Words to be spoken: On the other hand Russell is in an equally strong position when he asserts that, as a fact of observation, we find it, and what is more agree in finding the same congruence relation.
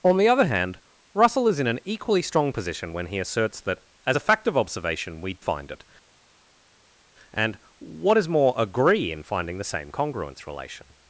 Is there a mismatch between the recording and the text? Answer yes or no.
no